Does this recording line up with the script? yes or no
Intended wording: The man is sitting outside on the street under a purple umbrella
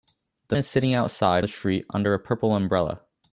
no